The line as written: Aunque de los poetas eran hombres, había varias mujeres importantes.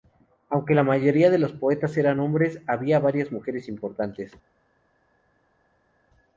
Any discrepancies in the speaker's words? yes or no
yes